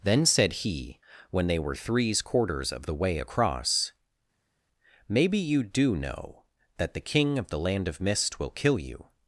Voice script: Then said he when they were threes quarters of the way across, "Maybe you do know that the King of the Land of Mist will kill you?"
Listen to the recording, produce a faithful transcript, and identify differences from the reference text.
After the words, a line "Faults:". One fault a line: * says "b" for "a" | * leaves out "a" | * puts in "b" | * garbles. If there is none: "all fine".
Then said he when they were threes quarters of the way across, "Maybe you do know that the King of the Land of Mist will kill you?"
Faults:
all fine